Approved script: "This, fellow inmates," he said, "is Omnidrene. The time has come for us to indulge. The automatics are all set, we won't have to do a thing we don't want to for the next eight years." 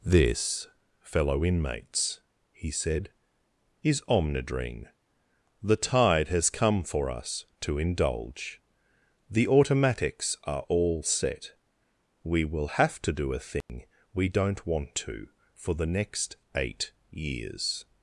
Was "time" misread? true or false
true